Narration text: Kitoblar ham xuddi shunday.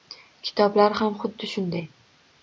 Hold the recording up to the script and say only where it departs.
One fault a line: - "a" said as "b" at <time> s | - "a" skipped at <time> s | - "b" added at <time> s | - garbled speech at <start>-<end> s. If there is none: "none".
none